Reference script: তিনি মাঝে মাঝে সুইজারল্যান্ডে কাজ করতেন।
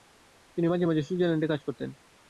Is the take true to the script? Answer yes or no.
yes